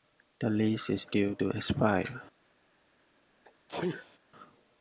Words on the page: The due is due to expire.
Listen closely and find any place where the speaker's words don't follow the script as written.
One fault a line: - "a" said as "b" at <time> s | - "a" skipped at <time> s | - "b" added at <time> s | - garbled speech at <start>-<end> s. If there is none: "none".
- "due" said as "lease" at 0.5 s